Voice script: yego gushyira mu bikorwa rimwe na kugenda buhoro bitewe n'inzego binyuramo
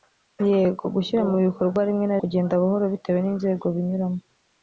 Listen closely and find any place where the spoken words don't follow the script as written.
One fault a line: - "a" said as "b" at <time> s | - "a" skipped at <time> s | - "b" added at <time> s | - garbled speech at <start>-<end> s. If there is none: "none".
none